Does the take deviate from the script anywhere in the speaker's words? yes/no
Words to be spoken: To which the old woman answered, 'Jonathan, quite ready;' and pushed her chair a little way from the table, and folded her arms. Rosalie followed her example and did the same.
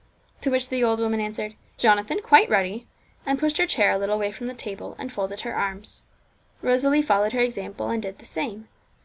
no